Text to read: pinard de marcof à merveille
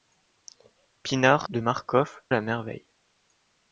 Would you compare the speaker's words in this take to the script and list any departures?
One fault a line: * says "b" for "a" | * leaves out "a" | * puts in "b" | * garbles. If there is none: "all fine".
all fine